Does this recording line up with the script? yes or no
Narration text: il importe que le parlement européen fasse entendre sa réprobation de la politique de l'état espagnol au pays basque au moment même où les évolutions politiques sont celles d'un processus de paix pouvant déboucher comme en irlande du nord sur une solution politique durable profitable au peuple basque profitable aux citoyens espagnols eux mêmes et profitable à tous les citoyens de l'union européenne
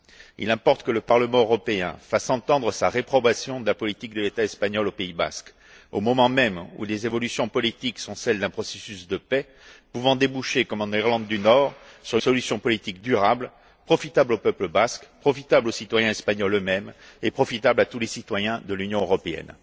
no